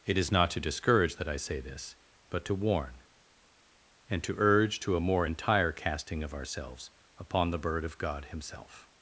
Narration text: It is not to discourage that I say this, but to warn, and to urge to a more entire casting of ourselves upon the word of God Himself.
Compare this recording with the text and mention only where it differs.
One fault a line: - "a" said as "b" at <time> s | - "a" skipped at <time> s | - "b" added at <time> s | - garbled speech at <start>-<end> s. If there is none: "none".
- "word" said as "bird" at 7.6 s